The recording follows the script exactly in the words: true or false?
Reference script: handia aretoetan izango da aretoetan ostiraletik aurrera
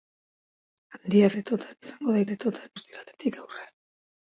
true